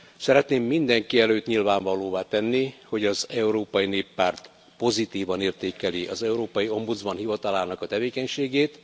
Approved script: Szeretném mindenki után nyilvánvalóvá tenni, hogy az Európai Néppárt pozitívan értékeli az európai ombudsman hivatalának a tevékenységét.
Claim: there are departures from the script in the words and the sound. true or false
true